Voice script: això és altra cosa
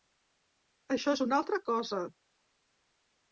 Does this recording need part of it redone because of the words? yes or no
yes